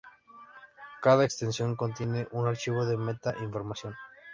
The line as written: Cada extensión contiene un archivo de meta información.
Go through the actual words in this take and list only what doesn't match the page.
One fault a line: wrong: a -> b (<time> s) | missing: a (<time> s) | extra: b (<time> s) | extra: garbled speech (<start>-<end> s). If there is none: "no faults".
no faults